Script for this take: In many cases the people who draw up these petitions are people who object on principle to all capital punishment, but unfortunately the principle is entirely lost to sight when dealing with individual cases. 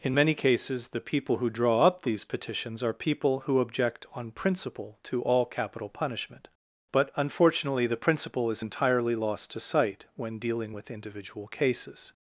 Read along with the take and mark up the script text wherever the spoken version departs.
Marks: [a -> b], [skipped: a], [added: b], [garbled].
In many cases the people who draw up these petitions are people who object on principle to all capital punishment, but unfortunately the principle is entirely lost to sight when dealing with individual cases.